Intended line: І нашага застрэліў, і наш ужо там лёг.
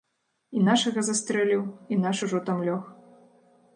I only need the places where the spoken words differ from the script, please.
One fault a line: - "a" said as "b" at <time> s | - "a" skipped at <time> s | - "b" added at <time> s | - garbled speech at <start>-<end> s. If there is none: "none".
none